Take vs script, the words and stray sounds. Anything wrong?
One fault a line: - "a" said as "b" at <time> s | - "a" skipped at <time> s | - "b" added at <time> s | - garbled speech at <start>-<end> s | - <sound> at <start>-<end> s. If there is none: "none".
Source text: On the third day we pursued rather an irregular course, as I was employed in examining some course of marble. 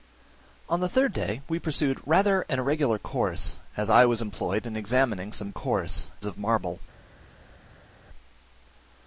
none